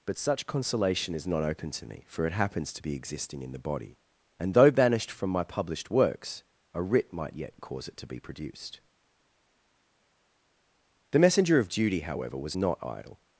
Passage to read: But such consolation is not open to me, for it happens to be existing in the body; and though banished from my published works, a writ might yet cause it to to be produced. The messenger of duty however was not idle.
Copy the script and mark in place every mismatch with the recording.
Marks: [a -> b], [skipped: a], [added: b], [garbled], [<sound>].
But such consolation is not open to me, for it happens to be existing in the body; and though banished from my published works, a writ might yet cause it to [skipped: to] be produced. The messenger of duty however was not idle.